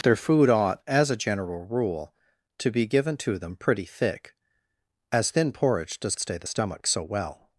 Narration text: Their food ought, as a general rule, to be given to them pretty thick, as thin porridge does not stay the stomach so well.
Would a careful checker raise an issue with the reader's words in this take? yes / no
yes